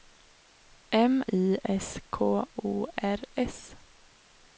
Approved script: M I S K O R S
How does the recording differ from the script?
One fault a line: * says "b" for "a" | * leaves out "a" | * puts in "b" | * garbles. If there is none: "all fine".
all fine